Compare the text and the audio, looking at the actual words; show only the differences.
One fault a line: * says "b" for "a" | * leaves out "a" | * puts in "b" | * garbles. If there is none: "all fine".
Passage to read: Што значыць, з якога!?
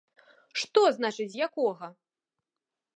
all fine